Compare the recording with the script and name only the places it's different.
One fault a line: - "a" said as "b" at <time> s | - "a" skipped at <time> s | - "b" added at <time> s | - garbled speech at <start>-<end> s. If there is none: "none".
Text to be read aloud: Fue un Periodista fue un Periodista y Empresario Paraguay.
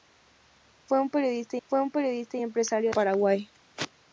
none